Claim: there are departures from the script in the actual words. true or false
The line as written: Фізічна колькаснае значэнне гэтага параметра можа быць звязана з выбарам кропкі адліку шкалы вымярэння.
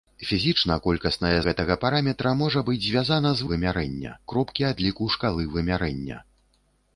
true